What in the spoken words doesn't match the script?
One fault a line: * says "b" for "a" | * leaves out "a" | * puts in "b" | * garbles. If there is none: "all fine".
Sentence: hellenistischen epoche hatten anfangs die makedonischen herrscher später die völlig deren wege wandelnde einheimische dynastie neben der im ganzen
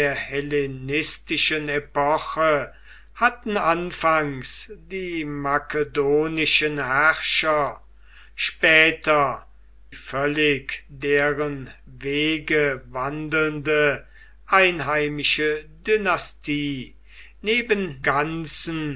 * leaves out "die"
* leaves out "der im"